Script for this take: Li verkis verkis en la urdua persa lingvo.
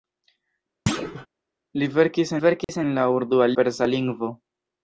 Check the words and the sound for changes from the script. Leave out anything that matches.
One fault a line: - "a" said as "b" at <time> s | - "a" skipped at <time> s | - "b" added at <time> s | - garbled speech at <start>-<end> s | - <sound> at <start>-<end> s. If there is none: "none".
- thud at 0.9-1.3 s
- dropout at 2.6-2.7 s